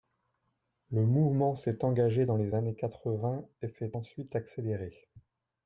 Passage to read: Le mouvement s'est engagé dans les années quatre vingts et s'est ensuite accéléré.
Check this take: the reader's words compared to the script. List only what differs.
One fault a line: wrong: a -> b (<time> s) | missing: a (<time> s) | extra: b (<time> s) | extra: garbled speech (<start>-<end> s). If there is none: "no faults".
no faults